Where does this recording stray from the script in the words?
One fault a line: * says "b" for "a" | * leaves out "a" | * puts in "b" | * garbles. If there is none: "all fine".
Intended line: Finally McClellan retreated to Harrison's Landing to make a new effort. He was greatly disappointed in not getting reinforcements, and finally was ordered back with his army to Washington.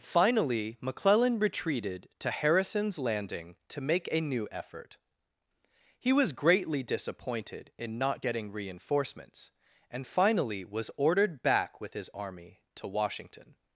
all fine